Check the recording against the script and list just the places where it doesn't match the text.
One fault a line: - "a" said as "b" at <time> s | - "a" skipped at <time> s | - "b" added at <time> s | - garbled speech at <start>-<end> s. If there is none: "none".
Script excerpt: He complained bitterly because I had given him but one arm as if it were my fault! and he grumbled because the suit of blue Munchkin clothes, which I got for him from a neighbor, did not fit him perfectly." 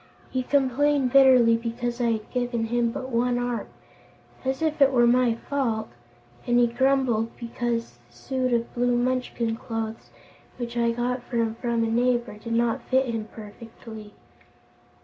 none